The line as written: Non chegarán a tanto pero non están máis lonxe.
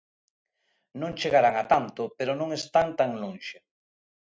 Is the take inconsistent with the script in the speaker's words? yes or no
yes